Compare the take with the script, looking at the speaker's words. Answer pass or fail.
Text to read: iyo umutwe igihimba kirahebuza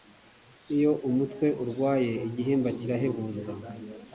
fail